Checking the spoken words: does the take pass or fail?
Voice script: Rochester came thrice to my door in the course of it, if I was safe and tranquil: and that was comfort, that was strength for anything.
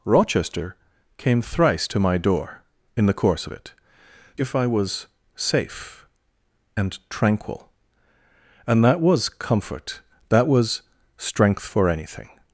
pass